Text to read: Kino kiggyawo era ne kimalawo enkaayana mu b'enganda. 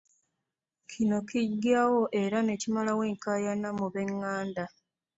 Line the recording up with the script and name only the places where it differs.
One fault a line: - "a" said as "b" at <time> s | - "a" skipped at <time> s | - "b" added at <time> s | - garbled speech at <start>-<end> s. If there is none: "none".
none